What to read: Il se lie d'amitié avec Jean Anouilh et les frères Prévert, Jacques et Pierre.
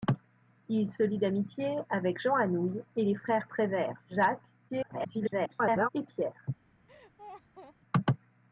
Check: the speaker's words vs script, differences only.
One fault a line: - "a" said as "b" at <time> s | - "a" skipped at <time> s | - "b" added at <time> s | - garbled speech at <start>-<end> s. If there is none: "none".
- garbled speech at 4.7-5.9 s